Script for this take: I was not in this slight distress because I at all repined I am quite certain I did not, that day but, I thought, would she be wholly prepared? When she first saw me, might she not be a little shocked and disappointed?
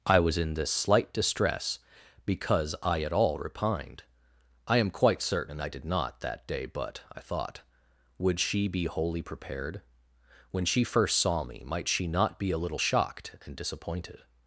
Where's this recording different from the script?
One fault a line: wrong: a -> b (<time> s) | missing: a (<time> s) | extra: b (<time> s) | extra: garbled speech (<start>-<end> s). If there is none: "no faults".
missing: not (0.4 s)